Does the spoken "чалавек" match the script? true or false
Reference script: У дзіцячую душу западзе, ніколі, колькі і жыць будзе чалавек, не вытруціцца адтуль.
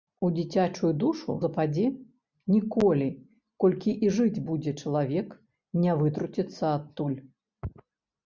true